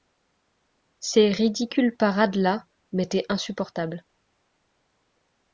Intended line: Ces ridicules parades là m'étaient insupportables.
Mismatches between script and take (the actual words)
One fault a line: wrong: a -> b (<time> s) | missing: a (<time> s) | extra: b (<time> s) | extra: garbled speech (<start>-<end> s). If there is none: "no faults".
no faults